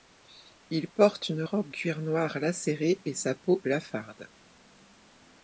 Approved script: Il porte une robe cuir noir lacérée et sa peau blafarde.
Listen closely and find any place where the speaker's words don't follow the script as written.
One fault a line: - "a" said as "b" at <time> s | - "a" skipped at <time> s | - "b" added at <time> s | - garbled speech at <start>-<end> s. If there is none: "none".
none